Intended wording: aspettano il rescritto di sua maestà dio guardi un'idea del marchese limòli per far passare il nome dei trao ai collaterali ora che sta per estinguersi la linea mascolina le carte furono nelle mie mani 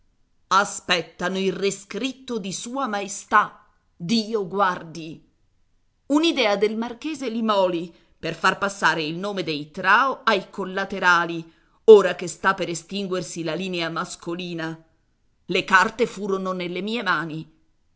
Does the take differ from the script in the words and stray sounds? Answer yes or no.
no